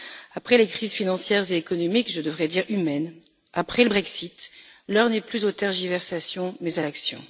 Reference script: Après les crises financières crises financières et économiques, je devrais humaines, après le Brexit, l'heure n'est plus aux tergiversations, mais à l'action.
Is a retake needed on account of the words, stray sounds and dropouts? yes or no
yes